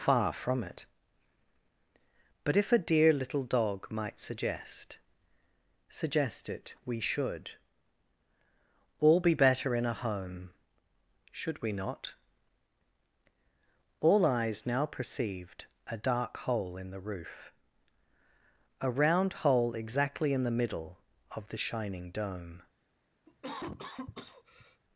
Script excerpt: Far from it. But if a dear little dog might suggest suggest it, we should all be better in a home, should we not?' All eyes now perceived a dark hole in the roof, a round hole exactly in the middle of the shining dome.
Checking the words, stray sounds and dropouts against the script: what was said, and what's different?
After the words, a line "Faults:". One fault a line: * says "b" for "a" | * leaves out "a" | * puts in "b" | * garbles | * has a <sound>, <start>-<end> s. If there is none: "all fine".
Far from it. But if a dear little dog might suggest suggest it, we should all be better in a home, should we not?' All eyes now perceived a dark hole in the roof, a round hole exactly in the middle of the shining dome.
Faults:
* has a cough, 23.3-24.8 s